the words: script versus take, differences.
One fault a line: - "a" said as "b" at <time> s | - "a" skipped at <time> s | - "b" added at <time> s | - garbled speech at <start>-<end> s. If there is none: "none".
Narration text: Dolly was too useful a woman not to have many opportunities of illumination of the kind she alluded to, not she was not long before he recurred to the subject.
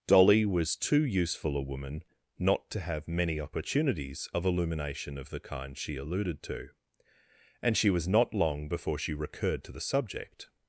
- "not" said as "and" at 7.6 s
- "he" said as "she" at 9.0 s